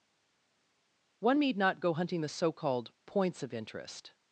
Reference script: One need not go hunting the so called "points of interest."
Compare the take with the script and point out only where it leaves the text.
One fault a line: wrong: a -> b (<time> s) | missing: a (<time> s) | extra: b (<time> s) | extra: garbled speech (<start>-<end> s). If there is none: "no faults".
no faults